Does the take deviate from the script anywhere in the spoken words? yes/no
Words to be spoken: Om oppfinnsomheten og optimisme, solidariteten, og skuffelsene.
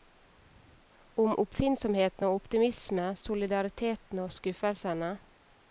no